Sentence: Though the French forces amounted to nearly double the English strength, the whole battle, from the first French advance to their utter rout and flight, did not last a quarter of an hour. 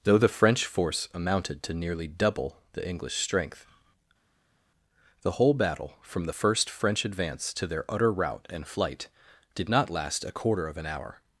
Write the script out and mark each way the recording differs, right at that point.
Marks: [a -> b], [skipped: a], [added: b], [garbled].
Though the French [forces -> force] amounted to nearly double the English strength, the whole battle, from the first French advance to their utter rout and flight, did not last a quarter of an hour.